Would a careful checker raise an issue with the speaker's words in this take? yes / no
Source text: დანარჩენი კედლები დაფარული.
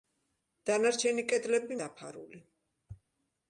no